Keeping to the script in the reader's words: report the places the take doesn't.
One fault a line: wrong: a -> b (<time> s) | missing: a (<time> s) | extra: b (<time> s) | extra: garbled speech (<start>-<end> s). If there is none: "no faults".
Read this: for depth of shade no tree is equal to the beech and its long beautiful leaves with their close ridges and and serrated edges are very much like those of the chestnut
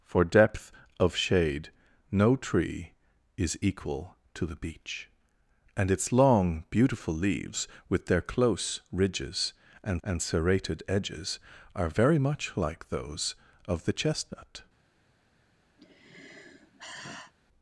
no faults